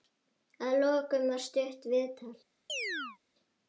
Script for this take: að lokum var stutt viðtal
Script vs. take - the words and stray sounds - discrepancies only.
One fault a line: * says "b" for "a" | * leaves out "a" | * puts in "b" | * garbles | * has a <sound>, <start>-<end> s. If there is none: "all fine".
* has a chirp, 2.7-3.2 s